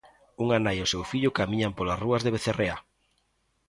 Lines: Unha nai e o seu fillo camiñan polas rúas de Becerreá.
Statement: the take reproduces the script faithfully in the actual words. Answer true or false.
true